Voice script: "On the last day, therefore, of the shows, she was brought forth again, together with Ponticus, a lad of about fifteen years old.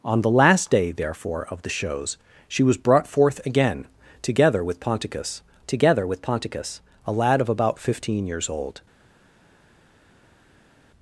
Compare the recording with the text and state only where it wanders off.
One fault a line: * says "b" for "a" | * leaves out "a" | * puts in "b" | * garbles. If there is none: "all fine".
* puts in "together with Ponticus"